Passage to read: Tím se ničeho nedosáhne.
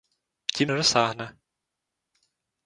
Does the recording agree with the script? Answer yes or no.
no